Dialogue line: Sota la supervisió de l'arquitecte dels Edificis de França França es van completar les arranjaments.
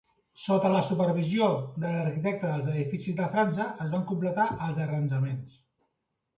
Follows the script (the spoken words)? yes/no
no